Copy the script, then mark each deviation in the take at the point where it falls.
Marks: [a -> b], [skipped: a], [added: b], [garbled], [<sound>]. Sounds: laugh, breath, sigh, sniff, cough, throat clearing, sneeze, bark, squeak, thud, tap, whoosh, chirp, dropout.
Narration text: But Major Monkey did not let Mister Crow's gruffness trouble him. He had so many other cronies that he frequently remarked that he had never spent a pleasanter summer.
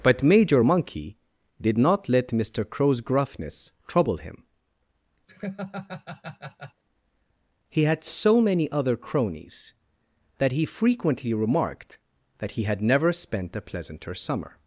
But Major Monkey did not let Mister Crow's gruffness trouble him. [laugh] He had so many other cronies that he frequently remarked that he had never spent a pleasanter summer.